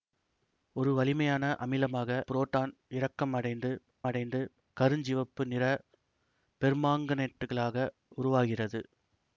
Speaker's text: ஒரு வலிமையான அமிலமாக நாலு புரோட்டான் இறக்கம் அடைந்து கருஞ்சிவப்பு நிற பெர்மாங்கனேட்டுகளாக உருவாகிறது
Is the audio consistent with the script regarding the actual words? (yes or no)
no